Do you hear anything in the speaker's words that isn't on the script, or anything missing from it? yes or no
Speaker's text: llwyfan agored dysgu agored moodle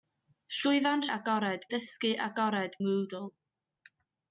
no